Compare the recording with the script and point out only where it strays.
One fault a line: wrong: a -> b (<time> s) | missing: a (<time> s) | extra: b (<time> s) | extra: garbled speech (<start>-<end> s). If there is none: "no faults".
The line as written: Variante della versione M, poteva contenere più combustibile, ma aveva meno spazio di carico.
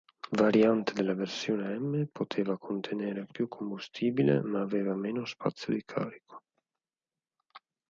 no faults